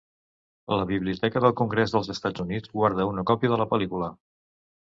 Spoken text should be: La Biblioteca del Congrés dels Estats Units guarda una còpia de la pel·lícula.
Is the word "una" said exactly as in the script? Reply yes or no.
yes